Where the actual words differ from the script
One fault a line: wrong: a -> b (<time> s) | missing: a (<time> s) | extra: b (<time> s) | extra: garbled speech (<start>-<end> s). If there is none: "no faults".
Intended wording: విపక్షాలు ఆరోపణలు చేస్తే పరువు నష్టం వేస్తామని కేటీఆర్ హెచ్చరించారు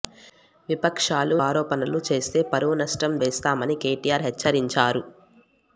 no faults